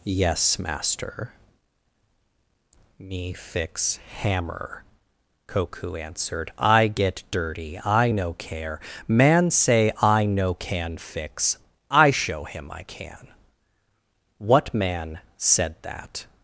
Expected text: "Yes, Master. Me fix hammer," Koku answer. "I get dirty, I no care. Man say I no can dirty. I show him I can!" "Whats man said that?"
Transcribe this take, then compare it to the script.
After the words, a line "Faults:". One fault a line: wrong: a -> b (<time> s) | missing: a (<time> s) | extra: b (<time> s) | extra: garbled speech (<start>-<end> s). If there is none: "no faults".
"Yes, Master. Me fix hammer," Koku answered. "I get dirty, I no care. Man say I no can fix. I show him I can!" "What man said that?"
Faults:
wrong: answer -> answered (6.0 s)
wrong: dirty -> fix (11.0 s)
wrong: Whats -> What (14.4 s)